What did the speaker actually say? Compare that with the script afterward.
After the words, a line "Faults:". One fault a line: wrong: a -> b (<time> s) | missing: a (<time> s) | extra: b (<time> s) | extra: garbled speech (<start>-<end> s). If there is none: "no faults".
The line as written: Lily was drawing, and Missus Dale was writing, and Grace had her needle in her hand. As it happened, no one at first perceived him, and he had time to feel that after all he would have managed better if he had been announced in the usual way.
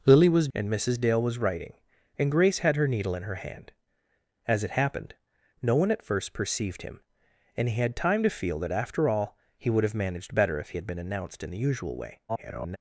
Lily was and Missus Dale was writing, and Grace had her needle in her hand. As it happened, no one at first perceived him, and he had time to feel that after all he would have managed better if he had been announced in the usual way. [garbled]
Faults:
missing: drawing (0.5 s)
extra: garbled speech (12.3-12.8 s)